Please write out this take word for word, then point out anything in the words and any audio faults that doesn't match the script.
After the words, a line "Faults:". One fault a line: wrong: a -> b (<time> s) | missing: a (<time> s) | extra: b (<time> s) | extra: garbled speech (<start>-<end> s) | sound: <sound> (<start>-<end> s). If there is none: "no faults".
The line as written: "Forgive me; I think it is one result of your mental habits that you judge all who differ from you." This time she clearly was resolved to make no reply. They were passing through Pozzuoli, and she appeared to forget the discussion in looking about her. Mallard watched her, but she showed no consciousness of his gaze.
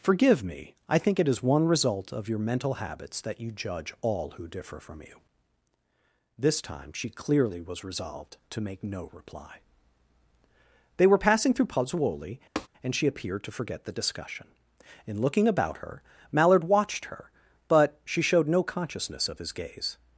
"Forgive me; I think it is one result of your mental habits that you judge all who differ from you." This time she clearly was resolved to make no reply. They were passing through Pozzuoli, and she appeared to forget the discussion in looking about her. Mallard watched her, but she showed no consciousness of his gaze.
Faults:
sound: tap (12.6-12.7 s)